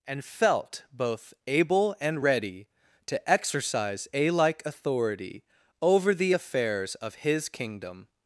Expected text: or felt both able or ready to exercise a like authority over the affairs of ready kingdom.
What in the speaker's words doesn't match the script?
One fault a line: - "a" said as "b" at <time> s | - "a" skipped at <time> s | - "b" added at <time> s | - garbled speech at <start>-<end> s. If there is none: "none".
- "or" said as "and" at 0.1 s
- "or" said as "and" at 2.0 s
- "ready" said as "his" at 7.2 s